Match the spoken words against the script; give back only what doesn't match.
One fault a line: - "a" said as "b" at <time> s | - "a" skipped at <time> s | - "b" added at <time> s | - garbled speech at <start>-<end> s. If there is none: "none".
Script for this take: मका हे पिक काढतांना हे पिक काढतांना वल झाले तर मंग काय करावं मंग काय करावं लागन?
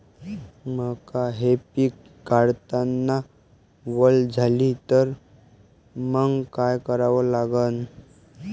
- "हे पिक काढतांना" skipped at 3.2 s
- "मंग काय करावं" skipped at 7.3 s